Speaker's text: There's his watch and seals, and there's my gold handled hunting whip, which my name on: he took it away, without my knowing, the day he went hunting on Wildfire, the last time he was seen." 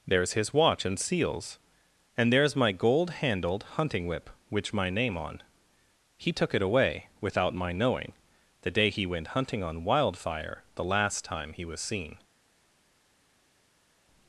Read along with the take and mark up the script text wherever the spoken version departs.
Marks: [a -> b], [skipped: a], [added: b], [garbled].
There's his watch and seals, and there's my gold handled hunting whip, which my name on: he took it away, without my knowing, the day he went hunting on Wildfire, the last time he was seen."